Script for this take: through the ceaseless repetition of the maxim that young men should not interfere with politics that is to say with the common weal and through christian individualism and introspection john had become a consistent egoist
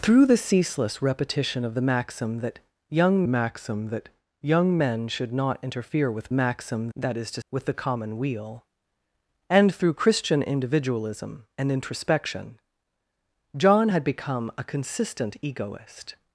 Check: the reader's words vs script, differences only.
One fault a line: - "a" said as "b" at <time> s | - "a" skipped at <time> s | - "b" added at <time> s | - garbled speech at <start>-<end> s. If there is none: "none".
- "maxim that young" added at 3.3 s
- "politics" said as "maxim" at 6.3 s
- "say" skipped at 7.4 s